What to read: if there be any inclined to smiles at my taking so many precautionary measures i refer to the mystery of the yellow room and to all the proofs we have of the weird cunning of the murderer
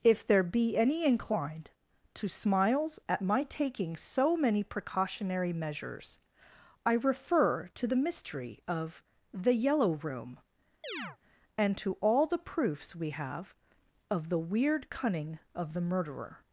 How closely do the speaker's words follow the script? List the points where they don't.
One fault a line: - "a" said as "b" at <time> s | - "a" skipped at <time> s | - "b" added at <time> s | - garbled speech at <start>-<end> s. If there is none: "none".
none